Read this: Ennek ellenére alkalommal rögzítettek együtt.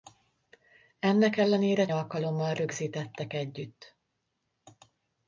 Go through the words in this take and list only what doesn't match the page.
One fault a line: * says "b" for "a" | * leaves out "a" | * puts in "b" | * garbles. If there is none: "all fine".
all fine